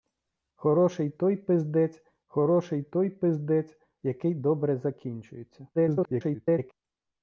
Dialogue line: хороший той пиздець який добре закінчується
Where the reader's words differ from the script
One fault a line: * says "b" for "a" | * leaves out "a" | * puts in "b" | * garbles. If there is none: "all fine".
* puts in "хороший той пиздець"
* garbles